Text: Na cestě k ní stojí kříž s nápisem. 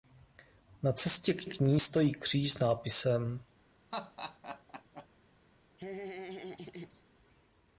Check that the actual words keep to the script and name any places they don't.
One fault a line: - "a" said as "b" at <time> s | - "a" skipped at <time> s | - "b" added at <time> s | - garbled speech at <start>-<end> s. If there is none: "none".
- "k" added at 1.5 s